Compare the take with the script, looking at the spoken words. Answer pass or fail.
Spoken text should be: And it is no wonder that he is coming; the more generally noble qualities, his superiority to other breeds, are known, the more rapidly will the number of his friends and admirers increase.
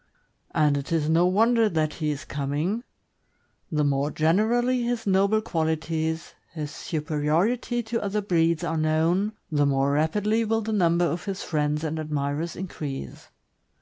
fail